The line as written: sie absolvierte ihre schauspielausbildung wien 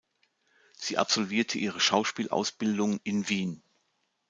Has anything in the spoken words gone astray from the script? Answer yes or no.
yes